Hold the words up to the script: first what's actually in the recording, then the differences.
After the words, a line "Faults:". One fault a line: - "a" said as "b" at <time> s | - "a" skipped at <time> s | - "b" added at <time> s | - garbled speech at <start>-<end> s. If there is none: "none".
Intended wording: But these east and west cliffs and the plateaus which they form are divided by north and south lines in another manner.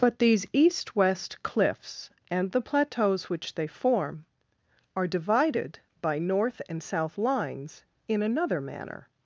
But these east west cliffs and the plateaus which they form are divided by north and south lines in another manner.
Faults:
- "and" skipped at 0.9 s